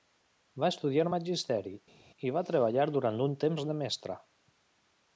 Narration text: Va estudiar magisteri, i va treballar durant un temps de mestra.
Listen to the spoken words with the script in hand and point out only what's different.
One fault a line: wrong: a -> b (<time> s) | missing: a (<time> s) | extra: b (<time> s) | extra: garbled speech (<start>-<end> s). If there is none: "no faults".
no faults